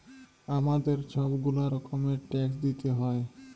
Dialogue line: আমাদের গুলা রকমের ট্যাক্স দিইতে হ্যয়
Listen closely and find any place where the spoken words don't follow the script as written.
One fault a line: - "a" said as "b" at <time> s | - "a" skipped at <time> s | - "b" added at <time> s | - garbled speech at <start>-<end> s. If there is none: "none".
- "ছব" added at 1.1 s